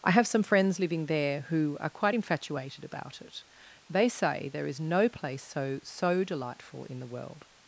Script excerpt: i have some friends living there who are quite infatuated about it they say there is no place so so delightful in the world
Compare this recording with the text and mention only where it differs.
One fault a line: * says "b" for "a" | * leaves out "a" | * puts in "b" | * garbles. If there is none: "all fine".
all fine